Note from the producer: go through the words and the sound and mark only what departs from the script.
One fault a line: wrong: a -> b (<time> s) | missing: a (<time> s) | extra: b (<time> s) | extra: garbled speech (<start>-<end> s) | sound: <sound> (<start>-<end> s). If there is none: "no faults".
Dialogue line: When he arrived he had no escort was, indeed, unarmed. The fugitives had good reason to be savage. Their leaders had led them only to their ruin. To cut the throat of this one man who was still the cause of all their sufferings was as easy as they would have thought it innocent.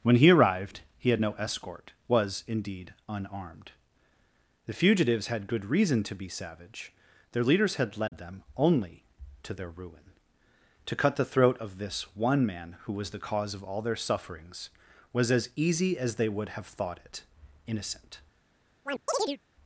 missing: still (13.1 s)
sound: chirp (18.8-19.4 s)